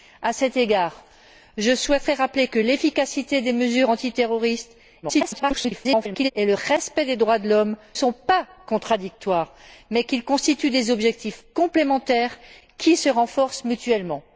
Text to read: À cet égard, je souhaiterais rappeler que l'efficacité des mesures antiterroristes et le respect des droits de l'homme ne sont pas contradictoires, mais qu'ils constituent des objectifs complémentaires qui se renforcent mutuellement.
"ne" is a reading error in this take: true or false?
true